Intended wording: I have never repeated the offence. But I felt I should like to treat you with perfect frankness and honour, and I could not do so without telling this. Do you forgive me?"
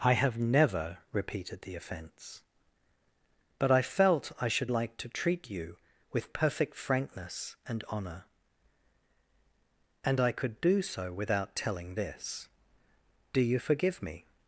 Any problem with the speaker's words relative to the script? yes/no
yes